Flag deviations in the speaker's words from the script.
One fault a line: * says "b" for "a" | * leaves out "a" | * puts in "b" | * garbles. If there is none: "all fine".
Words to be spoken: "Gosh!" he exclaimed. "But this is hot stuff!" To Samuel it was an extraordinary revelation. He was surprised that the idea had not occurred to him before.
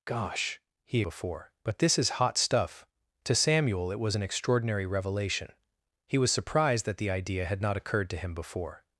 * says "before" for "exclaimed"